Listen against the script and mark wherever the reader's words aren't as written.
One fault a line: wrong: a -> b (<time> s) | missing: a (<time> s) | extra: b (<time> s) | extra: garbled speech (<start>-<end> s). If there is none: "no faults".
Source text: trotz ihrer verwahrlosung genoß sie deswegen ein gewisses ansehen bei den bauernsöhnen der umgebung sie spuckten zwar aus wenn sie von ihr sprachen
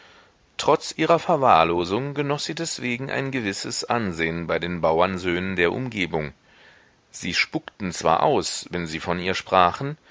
no faults